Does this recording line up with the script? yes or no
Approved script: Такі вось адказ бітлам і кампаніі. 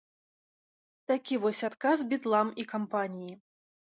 yes